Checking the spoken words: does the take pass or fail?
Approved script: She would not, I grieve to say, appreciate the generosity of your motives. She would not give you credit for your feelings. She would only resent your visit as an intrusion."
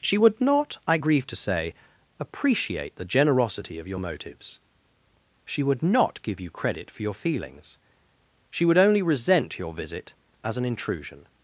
pass